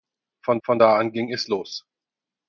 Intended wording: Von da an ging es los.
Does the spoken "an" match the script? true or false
true